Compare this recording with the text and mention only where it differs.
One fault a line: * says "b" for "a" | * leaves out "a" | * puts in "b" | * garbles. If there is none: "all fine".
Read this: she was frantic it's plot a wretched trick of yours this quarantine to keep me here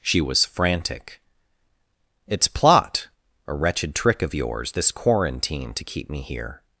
all fine